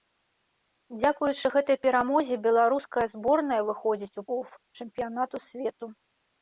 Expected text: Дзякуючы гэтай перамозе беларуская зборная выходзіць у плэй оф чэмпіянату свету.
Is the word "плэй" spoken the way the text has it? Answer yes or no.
no